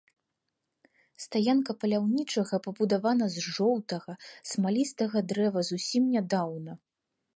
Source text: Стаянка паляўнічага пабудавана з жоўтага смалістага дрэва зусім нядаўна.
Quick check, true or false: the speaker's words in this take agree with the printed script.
true